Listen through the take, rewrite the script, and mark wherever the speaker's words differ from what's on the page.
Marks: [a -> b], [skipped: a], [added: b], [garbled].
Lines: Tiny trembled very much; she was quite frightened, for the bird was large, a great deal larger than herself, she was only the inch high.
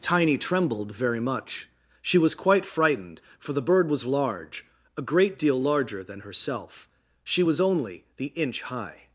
Tiny trembled very much; she was quite frightened, for the bird was large, a great deal larger than herself, she was only the inch high.